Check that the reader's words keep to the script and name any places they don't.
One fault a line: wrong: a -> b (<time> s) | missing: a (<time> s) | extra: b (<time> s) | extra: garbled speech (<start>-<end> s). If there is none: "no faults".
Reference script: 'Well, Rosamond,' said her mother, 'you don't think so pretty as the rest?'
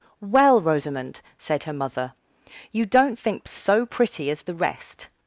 no faults